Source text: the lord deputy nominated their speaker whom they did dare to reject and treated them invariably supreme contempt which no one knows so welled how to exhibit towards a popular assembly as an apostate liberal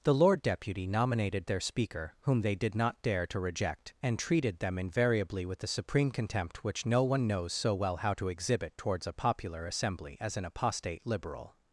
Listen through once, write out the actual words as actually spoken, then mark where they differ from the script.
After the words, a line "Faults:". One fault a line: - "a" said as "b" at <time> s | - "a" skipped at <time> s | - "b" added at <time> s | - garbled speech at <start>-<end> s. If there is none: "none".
the lord deputy nominated their speaker whom they did not dare to reject and treated them invariably with the supreme contempt which no one knows so well how to exhibit towards a popular assembly as an apostate liberal
Faults:
- "not" added at 2.7 s
- "with the" added at 5.5 s
- "welled" said as "well" at 7.7 s